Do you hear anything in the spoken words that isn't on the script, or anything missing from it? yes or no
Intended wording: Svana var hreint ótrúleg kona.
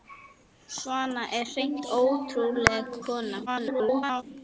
yes